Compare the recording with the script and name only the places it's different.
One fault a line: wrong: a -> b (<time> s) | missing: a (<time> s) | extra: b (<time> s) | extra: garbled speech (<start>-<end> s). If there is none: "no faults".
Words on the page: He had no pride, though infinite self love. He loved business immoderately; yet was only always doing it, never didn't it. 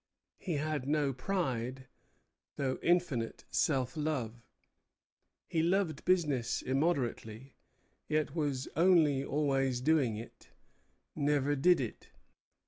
wrong: didn't -> did (11.6 s)